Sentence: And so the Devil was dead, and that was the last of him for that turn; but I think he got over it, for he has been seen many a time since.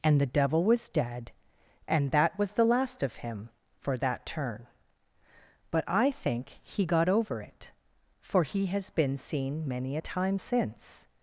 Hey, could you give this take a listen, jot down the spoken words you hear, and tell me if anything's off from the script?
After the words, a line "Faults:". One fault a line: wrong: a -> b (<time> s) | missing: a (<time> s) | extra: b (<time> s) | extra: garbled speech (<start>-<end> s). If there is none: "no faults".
And the Devil was dead, and that was the last of him for that turn; but I think he got over it, for he has been seen many a time since.
Faults:
missing: so (0.2 s)